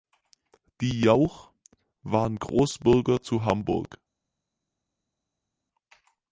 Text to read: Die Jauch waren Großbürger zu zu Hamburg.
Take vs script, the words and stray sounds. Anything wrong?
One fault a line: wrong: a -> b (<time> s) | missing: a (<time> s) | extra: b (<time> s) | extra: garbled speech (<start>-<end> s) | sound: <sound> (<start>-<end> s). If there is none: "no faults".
missing: zu (3.4 s)